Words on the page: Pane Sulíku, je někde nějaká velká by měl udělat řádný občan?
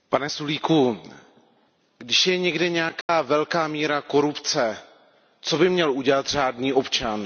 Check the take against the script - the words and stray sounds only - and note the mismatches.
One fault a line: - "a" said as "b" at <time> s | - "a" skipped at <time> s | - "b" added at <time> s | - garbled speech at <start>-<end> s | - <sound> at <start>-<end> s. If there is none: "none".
- "když" added at 2.0 s
- dropout at 3.0-3.1 s
- "míra korupce co" added at 3.7 s